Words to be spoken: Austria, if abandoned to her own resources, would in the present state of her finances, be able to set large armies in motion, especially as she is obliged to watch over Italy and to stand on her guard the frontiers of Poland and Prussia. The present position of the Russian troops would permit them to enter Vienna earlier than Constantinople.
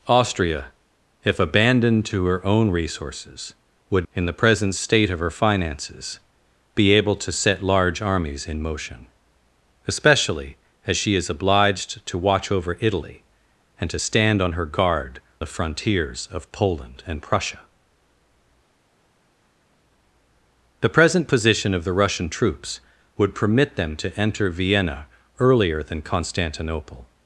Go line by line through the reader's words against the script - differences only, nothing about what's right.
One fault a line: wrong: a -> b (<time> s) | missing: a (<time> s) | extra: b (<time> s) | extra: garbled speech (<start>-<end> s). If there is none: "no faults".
no faults